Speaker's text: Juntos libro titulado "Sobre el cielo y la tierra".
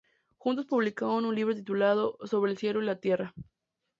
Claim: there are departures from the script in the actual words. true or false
true